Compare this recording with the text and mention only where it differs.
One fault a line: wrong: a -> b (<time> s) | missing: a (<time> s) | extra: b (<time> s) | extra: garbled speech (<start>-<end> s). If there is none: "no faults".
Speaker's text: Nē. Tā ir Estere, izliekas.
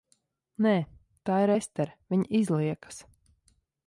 extra: viņa (2.1 s)